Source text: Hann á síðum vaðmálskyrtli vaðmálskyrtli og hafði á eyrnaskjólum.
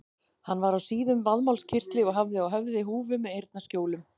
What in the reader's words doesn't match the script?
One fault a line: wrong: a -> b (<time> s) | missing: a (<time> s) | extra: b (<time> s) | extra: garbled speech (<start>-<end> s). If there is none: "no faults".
extra: var (0.6 s)
missing: vaðmálskyrtli (2.0 s)
extra: höfði húfu með (2.5 s)